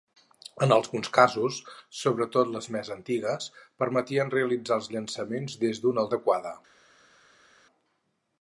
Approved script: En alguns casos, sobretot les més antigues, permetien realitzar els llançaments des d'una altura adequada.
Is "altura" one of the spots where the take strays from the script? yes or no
yes